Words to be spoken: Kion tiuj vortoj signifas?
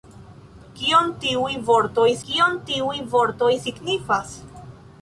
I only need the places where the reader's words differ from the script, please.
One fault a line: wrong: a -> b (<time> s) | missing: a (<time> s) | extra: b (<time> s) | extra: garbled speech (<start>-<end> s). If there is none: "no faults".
extra: kion tiuj vortoj (2.3 s)